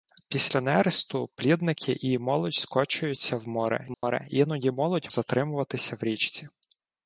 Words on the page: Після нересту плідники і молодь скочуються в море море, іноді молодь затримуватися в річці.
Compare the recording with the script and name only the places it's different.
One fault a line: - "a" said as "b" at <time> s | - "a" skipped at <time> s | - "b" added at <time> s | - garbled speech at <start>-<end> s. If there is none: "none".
none